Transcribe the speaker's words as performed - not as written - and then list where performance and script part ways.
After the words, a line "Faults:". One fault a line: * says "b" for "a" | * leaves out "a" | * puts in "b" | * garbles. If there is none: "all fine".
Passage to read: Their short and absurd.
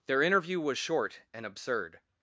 Their interview was short and absurd.
Faults:
* puts in "interview was"